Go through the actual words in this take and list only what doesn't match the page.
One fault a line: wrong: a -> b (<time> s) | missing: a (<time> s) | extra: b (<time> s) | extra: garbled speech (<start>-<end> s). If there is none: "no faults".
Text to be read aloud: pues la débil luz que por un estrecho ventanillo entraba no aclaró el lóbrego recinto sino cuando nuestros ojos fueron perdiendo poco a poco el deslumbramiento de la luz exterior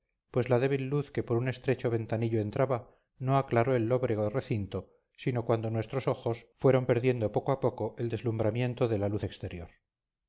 no faults